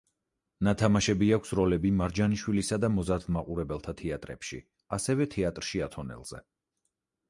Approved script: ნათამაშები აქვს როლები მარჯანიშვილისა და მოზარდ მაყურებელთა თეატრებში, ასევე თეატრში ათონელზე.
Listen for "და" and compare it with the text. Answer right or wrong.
right